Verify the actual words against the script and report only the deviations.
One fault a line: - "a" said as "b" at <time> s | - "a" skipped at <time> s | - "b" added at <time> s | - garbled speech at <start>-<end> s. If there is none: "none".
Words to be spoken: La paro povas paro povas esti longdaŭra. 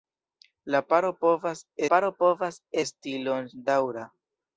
none